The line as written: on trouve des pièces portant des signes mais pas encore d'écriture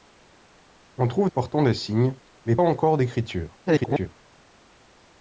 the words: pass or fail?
fail